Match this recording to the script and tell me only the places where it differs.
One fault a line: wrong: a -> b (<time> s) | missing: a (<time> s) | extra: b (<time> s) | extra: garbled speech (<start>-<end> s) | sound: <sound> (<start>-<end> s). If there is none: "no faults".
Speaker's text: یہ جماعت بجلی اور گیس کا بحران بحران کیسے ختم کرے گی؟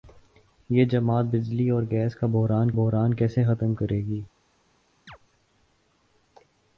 sound: chirp (5.1-5.2 s)